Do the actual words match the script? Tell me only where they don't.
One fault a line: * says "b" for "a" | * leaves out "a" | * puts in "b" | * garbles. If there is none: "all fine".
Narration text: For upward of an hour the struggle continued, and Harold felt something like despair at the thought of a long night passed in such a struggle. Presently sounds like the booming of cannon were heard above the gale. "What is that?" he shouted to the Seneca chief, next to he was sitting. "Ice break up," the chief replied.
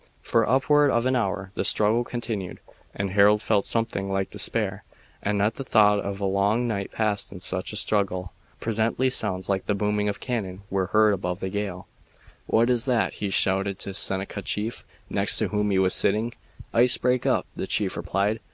* puts in "whom"